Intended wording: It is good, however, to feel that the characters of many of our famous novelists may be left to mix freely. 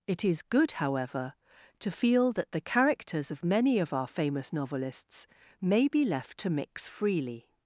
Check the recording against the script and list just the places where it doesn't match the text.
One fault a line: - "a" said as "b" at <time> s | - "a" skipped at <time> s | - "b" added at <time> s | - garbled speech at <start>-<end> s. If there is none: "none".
none